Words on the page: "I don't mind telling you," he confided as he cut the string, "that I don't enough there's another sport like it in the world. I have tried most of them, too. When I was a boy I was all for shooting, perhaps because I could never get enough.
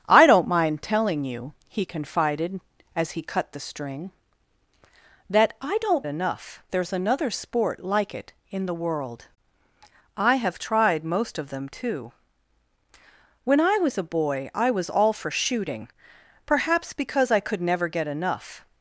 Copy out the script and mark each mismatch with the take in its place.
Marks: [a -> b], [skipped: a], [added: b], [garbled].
"I don't mind telling you," he confided as he cut the string, "that I don't enough there's another sport like it in the world. I have tried most of them, too. When I was a boy I was all for shooting, perhaps because I could never get enough.